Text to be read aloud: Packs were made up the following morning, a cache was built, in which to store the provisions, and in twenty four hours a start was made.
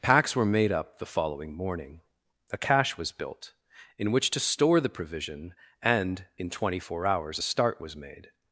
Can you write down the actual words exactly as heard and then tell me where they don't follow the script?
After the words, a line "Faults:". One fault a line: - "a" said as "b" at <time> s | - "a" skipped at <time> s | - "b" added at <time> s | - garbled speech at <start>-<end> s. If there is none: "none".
Packs were made up the following morning, a cache was built, in which to store the provision, and in twenty four hours a start was made.
Faults:
- "provisions" said as "provision" at 4.9 s